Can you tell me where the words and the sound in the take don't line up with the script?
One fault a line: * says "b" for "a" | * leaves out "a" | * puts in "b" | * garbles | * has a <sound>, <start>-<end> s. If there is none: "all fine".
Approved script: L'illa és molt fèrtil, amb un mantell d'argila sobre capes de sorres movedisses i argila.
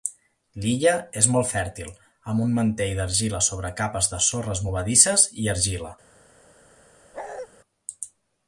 * has a bark, 7.1-7.5 s